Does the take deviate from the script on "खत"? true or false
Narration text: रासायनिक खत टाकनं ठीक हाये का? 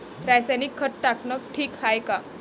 false